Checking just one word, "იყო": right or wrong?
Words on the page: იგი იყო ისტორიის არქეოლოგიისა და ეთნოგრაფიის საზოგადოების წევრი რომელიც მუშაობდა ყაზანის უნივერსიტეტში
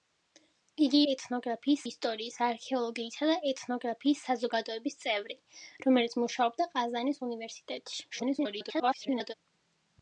wrong